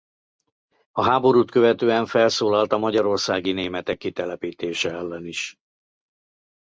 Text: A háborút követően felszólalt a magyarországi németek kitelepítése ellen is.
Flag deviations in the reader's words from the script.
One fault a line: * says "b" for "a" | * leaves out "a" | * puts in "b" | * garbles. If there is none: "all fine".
all fine